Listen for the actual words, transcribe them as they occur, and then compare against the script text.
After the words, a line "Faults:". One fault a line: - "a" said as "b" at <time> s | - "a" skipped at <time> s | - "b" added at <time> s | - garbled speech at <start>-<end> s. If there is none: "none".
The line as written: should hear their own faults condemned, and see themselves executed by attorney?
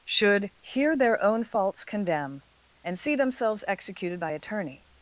should hear their own faults condemn, and see themselves executed by attorney?
Faults:
- "condemned" said as "condemn" at 1.9 s